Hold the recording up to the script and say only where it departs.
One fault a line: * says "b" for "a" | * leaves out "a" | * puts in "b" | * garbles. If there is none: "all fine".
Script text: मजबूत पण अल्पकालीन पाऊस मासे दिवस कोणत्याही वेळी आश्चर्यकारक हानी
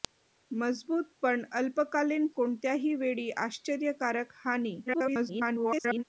* leaves out "पाऊस मासे दिवस"
* garbles